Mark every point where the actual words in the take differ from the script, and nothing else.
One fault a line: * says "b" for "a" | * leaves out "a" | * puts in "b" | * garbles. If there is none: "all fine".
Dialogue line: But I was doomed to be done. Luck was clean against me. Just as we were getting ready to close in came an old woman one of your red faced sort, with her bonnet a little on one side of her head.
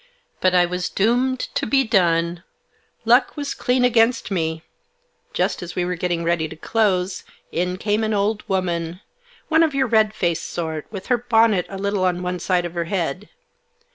all fine